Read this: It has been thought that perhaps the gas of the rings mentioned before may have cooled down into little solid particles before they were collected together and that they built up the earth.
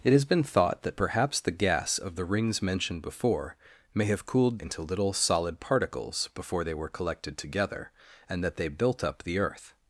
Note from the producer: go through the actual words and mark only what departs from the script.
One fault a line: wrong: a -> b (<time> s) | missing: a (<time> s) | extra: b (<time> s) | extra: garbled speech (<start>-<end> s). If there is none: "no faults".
missing: down (4.6 s)